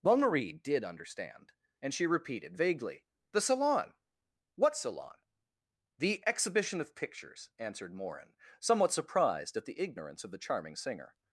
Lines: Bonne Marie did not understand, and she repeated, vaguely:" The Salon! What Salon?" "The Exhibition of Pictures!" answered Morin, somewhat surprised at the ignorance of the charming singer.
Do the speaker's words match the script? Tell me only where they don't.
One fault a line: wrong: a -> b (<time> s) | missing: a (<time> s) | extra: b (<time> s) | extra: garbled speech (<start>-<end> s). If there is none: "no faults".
missing: not (0.8 s)